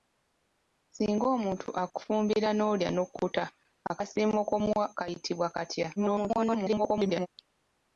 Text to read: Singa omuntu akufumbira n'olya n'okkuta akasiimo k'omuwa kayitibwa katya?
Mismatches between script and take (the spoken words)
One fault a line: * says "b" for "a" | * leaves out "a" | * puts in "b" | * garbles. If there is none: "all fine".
* garbles